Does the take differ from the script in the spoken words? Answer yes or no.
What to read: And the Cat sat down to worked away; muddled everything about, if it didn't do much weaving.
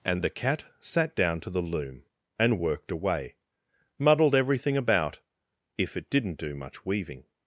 yes